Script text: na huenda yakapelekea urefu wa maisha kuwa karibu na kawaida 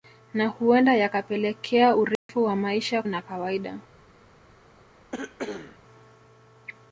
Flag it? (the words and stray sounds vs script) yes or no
yes